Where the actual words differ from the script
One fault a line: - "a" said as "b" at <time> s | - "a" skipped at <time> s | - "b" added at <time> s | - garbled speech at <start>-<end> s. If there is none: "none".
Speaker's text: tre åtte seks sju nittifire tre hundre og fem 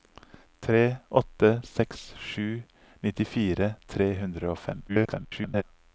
- garbled speech at 4.9-5.6 s